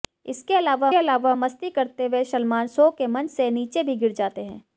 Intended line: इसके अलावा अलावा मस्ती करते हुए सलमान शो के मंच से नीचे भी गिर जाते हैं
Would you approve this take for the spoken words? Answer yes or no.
yes